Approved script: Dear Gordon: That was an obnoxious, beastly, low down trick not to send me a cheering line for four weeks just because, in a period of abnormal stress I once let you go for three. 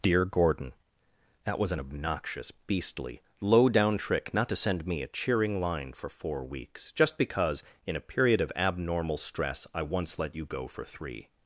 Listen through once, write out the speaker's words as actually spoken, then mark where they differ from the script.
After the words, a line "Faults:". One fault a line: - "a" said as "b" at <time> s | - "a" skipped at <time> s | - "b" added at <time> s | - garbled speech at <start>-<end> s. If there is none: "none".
Dear Gordon: That was an obnoxious, beastly, low down trick not to send me a cheering line for four weeks just because, in a period of abnormal stress I once let you go for three.
Faults:
none